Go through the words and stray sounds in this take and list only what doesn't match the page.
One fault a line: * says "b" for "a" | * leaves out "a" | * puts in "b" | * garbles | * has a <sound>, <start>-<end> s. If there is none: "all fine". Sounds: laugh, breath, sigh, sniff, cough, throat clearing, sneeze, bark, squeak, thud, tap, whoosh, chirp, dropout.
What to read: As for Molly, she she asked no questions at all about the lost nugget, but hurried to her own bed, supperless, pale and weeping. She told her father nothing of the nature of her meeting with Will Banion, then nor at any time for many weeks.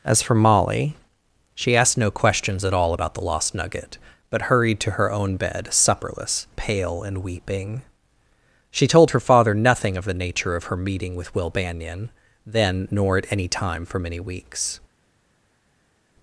* leaves out "she"